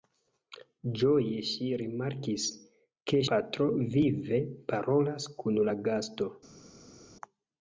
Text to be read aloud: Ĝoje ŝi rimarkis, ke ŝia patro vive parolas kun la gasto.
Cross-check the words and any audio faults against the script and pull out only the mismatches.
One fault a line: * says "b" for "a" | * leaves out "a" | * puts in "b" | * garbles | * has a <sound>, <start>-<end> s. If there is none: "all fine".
* leaves out "ŝia"